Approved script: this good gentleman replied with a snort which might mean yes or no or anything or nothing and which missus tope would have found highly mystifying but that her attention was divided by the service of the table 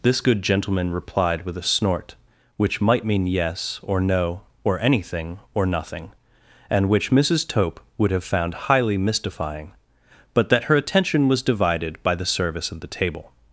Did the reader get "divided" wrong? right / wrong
right